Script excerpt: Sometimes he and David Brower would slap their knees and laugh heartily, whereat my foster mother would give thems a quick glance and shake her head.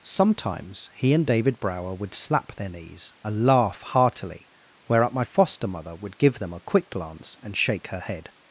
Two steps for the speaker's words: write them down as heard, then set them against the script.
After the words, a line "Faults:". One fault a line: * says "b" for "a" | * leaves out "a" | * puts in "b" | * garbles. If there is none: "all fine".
Sometimes he and David Brower would slap their knees and laugh heartily, whereat my foster mother would give them a quick glance and shake her head.
Faults:
* says "them" for "thems"